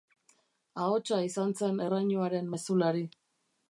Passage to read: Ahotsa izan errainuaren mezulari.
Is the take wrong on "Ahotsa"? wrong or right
right